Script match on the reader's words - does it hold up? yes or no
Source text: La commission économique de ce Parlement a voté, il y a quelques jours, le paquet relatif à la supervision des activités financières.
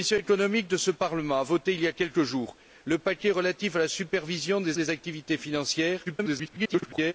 no